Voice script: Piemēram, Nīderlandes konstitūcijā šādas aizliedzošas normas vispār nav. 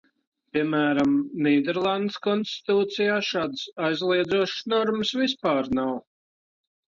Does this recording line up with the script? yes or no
yes